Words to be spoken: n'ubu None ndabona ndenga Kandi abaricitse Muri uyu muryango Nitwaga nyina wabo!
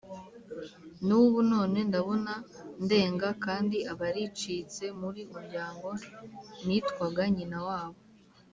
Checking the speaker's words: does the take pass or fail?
fail